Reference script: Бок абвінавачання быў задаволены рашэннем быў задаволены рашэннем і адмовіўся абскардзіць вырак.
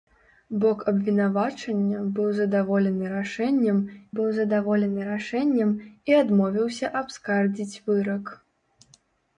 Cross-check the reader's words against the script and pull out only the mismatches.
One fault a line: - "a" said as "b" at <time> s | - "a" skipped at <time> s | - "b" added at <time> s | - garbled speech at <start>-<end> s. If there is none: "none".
none